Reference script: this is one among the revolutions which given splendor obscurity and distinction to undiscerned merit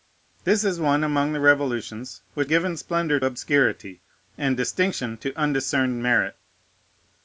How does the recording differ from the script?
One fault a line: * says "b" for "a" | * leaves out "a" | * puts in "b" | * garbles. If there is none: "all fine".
all fine